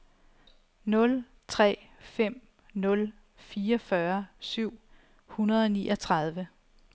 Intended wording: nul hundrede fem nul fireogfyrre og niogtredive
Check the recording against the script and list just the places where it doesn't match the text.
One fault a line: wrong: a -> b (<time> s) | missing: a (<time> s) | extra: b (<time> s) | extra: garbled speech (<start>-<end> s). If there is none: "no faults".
wrong: hundrede -> tre (1.5 s)
extra: syv hundrede (4.4 s)